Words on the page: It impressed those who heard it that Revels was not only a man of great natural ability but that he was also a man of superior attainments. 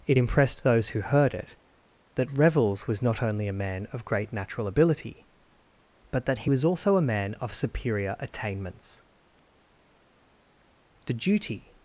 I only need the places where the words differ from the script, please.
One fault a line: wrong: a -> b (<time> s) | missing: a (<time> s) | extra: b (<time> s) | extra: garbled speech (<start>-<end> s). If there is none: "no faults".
extra: The duty (11.1 s)